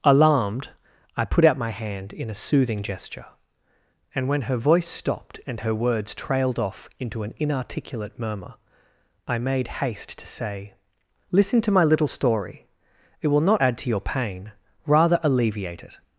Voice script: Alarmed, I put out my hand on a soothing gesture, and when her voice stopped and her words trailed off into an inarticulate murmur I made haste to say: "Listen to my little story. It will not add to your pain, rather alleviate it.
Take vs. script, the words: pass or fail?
fail